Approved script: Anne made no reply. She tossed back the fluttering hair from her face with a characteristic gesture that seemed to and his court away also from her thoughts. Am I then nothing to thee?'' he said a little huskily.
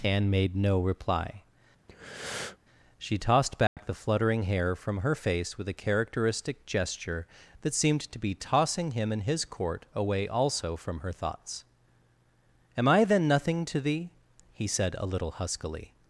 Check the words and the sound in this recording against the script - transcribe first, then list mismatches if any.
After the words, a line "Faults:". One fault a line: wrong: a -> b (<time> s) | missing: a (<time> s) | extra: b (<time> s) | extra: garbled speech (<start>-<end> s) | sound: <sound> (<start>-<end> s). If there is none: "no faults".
Anne made no reply. She tossed back the fluttering hair from her face with a characteristic gesture that seemed to be tossing him and his court away also from her thoughts. Am I then nothing to thee?'' he said a little huskily.
Faults:
sound: breath (1.9-2.6 s)
sound: dropout (3.7-3.8 s)
extra: be tossing him (8.2 s)